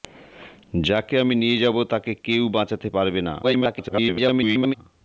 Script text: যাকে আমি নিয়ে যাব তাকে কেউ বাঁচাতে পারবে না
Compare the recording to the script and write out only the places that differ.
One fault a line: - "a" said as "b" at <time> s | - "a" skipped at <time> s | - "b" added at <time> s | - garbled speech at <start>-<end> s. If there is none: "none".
- garbled speech at 3.4-4.7 s